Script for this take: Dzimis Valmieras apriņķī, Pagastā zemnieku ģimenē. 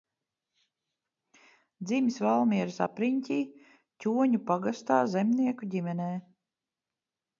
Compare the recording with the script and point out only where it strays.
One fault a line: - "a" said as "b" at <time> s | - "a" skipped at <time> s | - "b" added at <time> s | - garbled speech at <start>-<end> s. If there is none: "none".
- "Ķoņu" added at 4.1 s